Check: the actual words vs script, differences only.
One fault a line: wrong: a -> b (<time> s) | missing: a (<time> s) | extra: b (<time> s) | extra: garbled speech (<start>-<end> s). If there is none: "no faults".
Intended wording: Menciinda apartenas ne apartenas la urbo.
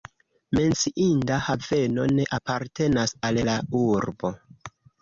wrong: apartenas -> haveno (1.5 s)
extra: al (3.3 s)